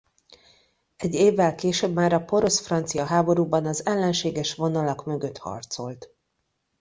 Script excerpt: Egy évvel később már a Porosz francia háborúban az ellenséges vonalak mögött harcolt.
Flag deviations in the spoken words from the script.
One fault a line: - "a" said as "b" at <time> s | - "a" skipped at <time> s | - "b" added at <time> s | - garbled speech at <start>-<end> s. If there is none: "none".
none